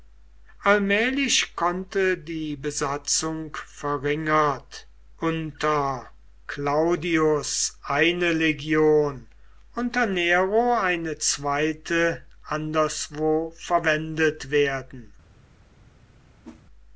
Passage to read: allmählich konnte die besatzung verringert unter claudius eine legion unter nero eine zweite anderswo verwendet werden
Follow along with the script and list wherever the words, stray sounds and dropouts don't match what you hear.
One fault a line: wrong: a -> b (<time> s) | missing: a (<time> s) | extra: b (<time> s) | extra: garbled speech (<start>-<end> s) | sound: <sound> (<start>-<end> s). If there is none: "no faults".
sound: whoosh (16.4-16.6 s)